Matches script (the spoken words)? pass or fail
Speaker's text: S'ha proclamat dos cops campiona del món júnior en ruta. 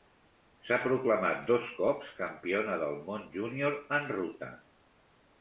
pass